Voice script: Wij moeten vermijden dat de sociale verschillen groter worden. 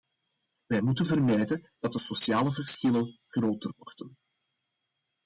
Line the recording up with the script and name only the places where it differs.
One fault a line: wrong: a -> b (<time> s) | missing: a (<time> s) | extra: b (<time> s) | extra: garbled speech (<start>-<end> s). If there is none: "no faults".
no faults